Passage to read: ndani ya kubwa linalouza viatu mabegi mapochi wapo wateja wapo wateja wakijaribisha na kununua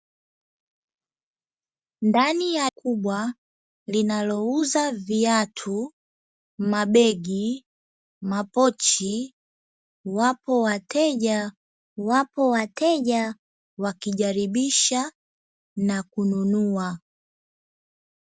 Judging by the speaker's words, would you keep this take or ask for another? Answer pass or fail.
pass